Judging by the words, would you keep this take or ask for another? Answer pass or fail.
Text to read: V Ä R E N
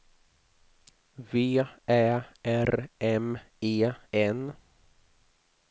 fail